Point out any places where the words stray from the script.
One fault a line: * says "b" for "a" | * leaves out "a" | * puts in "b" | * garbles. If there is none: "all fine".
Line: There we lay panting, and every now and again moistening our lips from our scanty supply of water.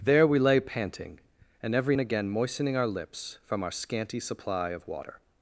* leaves out "now"